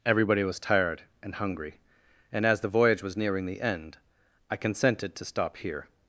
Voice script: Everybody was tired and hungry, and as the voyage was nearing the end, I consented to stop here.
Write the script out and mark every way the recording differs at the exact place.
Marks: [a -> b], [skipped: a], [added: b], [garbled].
Everybody was tired and hungry, and as the voyage was nearing the end, I consented to stop here.